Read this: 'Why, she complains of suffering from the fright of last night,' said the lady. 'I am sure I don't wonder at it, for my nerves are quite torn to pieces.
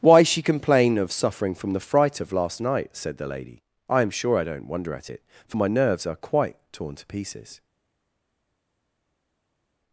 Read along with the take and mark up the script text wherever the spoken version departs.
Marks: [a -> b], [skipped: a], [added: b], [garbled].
'Why, she [complains -> complain] of suffering from the fright of last night,' said the lady. 'I am sure I don't wonder at it, for my nerves are quite torn to pieces.